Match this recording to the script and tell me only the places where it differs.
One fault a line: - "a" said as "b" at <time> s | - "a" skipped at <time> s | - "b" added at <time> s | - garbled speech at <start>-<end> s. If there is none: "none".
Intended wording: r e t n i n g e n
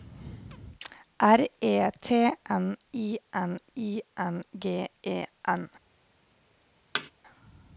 - "i n" added at 3.8 s